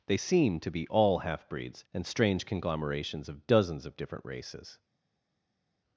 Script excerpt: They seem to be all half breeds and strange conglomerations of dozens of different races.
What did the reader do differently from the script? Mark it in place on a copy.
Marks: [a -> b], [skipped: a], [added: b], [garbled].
They seem to be all half breeds and strange conglomerations of dozens of different races.